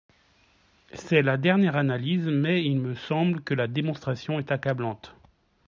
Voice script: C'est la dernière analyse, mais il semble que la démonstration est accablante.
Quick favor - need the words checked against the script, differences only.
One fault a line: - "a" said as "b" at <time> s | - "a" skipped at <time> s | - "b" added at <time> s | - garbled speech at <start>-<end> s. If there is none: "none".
- "me" added at 2.8 s